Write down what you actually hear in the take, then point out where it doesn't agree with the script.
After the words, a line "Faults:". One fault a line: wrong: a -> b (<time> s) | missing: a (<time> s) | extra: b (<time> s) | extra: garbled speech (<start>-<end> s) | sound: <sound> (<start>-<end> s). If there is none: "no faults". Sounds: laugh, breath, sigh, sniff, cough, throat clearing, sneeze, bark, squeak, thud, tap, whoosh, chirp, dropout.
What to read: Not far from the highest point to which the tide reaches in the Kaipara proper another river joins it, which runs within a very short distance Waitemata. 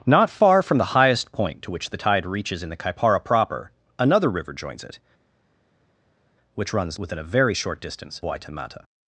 Not far from the highest point to which the tide reaches in the Kaipara proper another river joins it, which runs within a very short distance Waitemata.
Faults:
no faults